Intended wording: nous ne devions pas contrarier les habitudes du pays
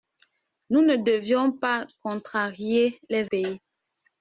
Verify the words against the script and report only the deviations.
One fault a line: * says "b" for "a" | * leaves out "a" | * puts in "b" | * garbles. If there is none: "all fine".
* leaves out "habitudes du"